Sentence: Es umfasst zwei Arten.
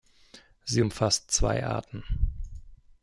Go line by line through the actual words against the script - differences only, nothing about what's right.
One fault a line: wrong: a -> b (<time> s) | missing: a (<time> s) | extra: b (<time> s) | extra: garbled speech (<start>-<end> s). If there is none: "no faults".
wrong: Es -> Sie (0.6 s)